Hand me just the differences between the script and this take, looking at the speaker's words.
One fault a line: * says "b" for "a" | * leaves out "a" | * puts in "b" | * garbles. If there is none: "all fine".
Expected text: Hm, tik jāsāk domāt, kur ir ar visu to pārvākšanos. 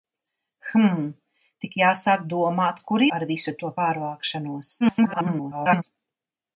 * leaves out "ir"
* garbles